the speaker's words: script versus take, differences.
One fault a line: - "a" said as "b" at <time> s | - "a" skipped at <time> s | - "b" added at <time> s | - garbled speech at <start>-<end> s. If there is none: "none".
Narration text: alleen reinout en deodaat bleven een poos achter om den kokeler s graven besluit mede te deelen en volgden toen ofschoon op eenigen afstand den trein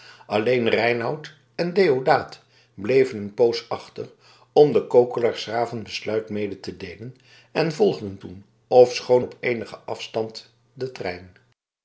none